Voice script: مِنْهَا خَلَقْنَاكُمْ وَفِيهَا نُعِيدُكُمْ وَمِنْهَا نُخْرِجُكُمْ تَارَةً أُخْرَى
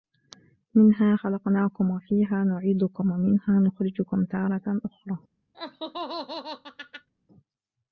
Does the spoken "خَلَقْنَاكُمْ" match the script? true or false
true